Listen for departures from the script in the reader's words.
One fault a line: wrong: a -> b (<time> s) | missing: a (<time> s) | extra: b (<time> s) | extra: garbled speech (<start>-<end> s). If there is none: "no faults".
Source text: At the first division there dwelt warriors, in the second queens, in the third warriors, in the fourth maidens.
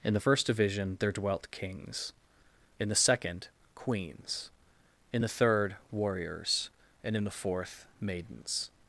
wrong: At -> In (0.0 s)
wrong: warriors -> kings (1.5 s)
extra: and (7.0 s)